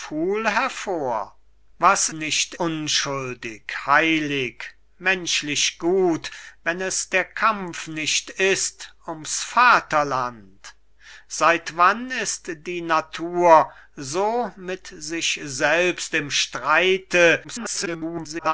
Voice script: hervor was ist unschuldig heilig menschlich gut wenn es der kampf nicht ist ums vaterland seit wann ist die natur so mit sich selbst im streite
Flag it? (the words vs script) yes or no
yes